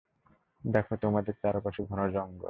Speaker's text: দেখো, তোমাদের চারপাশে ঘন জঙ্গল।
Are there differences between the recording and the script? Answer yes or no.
no